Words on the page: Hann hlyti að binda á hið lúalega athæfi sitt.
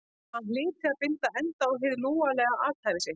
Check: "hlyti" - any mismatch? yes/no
no